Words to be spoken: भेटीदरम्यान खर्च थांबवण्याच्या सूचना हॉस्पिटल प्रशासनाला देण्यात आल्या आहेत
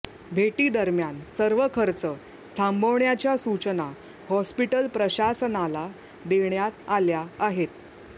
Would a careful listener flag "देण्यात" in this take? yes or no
no